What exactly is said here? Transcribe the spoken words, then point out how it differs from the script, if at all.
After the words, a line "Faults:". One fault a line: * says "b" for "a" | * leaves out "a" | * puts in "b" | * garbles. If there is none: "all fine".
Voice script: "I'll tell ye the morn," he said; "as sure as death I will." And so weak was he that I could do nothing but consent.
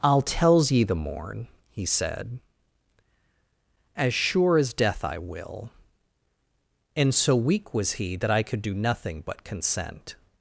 "I'll tells ye the morn," he said; "as sure as death I will." And so weak was he that I could do nothing but consent.
Faults:
* says "tells" for "tell"